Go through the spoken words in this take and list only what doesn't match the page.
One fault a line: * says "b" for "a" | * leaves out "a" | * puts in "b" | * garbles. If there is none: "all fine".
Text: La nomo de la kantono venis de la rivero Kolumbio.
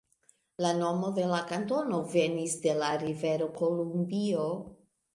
all fine